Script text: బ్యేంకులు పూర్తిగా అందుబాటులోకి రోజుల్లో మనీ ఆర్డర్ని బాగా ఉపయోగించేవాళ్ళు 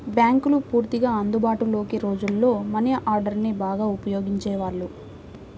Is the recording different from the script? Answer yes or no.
no